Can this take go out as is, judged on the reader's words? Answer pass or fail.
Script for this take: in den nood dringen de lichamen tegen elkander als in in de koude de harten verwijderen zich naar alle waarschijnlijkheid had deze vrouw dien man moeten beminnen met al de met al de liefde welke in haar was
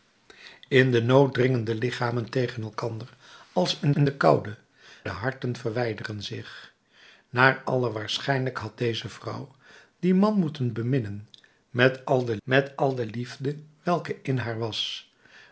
pass